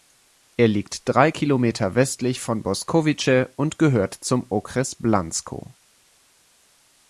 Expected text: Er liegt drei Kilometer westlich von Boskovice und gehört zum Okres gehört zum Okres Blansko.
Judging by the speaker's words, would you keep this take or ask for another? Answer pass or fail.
fail